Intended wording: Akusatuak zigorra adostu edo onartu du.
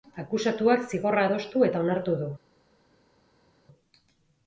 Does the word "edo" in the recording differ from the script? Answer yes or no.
yes